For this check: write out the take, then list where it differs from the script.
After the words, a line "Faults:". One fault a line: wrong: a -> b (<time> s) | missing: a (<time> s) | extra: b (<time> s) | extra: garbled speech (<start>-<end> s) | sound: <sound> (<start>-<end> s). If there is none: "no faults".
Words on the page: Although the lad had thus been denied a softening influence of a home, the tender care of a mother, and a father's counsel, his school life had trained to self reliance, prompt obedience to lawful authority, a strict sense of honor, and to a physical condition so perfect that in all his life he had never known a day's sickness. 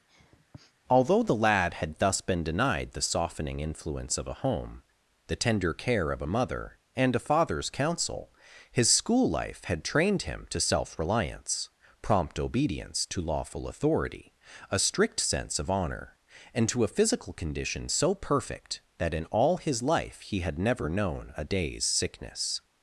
Although the lad had thus been denied the softening influence of a home, the tender care of a mother, and a father's counsel, his school life had trained him to self reliance, prompt obedience to lawful authority, a strict sense of honor, and to a physical condition so perfect that in all his life he had never known a day's sickness.
Faults:
sound: sniff (0.1-0.7 s)
wrong: a -> the (2.9 s)
extra: him (10.2 s)